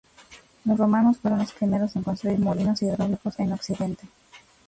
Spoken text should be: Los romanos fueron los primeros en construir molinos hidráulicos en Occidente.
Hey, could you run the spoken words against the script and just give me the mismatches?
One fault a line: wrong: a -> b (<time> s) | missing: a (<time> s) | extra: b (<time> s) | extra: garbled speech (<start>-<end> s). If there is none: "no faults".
no faults